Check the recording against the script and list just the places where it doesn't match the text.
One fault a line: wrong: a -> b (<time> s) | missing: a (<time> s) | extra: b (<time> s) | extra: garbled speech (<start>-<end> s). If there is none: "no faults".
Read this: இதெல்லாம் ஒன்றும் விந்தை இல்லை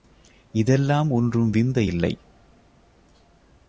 no faults